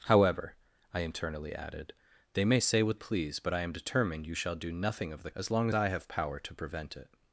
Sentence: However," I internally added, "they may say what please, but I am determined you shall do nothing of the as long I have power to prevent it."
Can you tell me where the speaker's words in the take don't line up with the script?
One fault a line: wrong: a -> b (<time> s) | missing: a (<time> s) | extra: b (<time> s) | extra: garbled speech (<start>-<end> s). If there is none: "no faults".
no faults